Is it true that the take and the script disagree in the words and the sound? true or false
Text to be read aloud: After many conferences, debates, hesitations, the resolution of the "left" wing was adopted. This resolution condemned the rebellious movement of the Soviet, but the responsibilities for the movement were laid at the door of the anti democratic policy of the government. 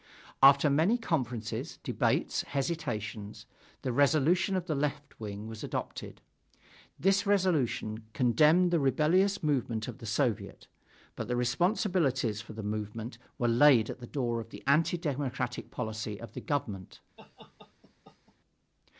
true